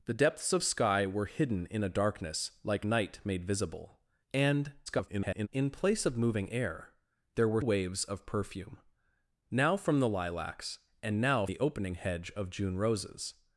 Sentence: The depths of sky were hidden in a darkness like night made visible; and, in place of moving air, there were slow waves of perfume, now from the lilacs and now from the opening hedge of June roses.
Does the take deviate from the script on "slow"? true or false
true